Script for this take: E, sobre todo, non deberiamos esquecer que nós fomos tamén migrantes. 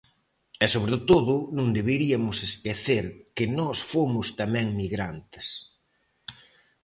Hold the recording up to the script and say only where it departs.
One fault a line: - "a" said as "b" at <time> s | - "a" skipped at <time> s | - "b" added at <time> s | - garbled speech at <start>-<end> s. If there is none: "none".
none